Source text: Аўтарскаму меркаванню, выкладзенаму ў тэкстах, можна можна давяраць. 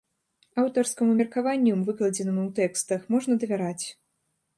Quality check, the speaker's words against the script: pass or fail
fail